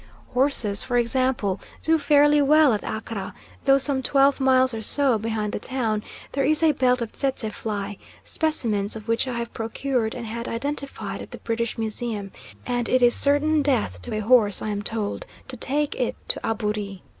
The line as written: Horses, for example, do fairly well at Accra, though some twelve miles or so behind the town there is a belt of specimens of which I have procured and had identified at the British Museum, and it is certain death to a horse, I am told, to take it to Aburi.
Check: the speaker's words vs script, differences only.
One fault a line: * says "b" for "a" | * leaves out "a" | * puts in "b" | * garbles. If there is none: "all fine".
* puts in "tsetse fly"